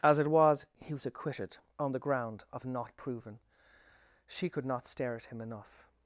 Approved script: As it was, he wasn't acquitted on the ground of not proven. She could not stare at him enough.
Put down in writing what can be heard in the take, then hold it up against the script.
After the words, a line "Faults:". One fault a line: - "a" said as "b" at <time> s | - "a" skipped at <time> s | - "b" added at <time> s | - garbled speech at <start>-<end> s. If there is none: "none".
As it was, he was acquitted on the ground of not proven. She could not stare at him enough.
Faults:
- "wasn't" said as "was" at 0.9 s